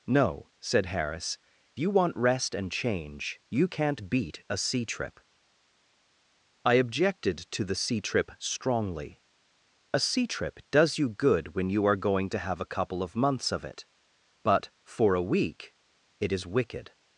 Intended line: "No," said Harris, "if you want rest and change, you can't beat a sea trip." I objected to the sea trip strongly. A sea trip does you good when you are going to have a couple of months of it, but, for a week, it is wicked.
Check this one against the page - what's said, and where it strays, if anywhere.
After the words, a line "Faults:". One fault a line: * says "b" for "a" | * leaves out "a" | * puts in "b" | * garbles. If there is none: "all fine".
"No," said Harris, "you want rest and change, you can't beat a sea trip." I objected to the sea trip strongly. A sea trip does you good when you are going to have a couple of months of it, but, for a week, it is wicked.
Faults:
* leaves out "if"